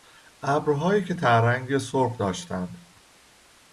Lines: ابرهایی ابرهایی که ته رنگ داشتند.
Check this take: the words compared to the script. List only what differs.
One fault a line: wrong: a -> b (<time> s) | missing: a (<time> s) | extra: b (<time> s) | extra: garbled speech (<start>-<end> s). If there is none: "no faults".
missing: ابرهایی (1.0 s)
extra: سرخ (1.8 s)